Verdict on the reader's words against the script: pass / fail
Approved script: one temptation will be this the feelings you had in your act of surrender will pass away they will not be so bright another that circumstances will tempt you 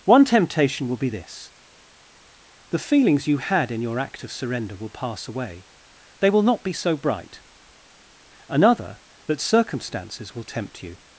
pass